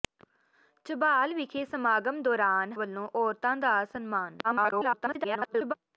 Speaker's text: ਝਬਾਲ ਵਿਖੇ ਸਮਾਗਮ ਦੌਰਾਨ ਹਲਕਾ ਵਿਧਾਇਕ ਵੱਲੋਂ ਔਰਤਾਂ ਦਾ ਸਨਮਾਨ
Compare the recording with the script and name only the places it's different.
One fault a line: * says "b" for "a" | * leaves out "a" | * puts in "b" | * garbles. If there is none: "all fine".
* leaves out "ਹਲਕਾ ਵਿਧਾਇਕ"
* garbles